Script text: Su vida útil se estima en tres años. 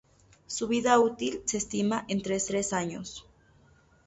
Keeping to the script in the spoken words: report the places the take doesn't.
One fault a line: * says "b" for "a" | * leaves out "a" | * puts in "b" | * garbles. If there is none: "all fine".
* puts in "tres"